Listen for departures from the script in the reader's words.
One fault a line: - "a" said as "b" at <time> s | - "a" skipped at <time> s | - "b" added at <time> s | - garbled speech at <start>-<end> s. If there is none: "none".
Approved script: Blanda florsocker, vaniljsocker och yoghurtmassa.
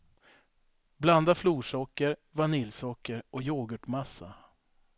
none